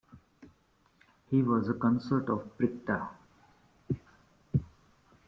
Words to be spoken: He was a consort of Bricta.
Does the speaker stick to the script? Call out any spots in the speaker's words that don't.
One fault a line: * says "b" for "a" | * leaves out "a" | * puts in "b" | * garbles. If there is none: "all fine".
all fine